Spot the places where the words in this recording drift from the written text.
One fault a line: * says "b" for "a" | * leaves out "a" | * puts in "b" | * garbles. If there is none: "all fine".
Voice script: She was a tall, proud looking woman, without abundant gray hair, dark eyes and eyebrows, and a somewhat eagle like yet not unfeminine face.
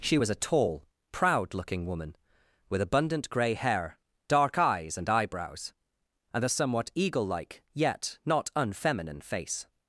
* says "with" for "without"